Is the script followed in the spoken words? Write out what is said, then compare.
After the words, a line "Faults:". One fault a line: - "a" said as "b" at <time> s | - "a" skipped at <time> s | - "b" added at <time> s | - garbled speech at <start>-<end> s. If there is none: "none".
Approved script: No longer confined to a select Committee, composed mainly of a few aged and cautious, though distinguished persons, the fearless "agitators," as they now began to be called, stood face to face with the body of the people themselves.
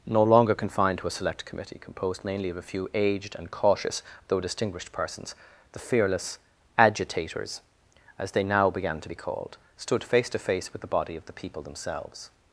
No longer confined to a select Committee, composed mainly of a few aged and cautious, though distinguished persons, the fearless "agitators," as they now began to be called, stood face to face with the body of the people themselves.
Faults:
none